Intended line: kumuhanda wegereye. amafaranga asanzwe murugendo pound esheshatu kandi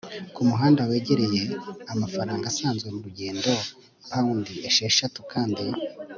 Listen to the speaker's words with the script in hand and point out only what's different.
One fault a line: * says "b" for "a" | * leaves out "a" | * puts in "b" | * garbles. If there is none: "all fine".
all fine